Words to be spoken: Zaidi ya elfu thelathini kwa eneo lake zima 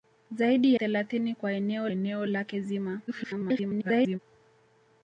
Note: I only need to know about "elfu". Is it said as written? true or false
false